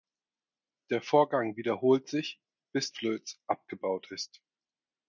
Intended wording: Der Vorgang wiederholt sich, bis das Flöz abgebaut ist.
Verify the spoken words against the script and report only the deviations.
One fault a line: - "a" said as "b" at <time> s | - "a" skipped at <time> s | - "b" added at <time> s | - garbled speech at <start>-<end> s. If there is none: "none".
- "das" skipped at 2.9 s